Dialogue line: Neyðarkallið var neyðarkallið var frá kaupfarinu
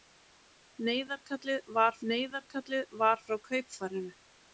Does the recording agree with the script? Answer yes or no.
yes